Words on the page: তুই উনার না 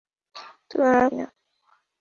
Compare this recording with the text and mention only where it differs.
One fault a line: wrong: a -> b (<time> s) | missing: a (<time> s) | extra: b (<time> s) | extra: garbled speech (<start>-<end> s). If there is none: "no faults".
no faults